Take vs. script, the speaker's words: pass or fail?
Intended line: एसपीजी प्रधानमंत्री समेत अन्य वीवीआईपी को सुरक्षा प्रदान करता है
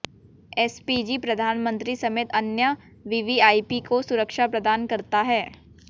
pass